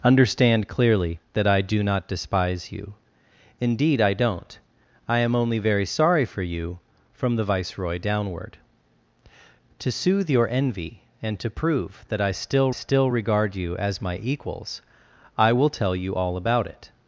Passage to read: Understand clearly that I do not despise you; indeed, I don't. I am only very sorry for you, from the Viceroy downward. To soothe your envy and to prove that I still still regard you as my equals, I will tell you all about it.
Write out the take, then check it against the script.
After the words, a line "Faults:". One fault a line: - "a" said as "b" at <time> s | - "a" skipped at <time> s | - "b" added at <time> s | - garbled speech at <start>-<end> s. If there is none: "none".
Understand clearly that I do not despise you; indeed, I don't. I am only very sorry for you, from the Viceroy downward. To soothe your envy and to prove that I still still regard you as my equals, I will tell you all about it.
Faults:
none